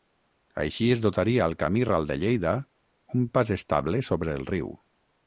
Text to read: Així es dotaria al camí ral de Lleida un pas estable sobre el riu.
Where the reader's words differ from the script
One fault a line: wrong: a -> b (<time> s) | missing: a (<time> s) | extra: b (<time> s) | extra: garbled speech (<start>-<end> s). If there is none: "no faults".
no faults